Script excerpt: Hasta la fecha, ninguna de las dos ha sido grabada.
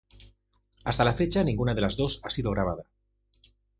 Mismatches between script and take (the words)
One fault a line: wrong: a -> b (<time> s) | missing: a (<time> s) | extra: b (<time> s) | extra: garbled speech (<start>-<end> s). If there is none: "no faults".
no faults